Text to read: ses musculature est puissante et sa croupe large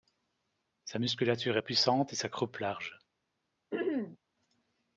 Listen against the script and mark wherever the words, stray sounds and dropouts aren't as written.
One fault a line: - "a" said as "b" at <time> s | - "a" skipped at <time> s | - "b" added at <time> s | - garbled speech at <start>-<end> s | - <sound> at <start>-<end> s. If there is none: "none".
- "ses" said as "sa" at 0.8 s
- throat clearing at 3.7-4.2 s